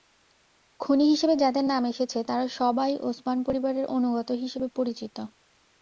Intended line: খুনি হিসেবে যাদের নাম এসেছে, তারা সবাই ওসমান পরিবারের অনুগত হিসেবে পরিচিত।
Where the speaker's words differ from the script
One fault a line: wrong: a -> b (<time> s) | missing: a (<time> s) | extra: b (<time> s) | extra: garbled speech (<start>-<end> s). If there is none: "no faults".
no faults